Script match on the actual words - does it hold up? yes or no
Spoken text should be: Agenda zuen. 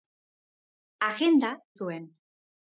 yes